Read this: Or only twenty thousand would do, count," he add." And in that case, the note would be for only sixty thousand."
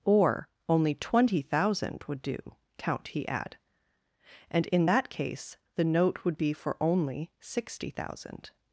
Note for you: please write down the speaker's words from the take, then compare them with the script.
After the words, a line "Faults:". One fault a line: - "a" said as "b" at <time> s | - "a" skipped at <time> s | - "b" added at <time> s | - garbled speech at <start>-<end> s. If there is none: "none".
Or only twenty thousand would do, count," he add." And in that case, the note would be for only sixty thousand."
Faults:
none